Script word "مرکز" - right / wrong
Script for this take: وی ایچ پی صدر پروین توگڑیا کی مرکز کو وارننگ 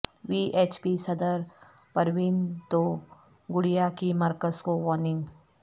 right